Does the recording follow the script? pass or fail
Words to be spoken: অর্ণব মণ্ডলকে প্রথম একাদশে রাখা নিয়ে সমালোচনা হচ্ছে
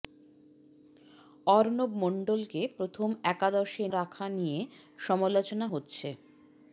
pass